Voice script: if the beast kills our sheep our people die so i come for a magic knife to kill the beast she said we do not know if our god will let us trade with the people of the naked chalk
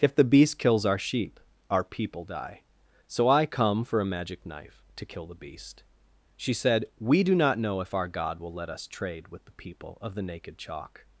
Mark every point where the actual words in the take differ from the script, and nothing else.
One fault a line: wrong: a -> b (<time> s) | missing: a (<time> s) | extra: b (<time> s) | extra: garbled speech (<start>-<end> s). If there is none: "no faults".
no faults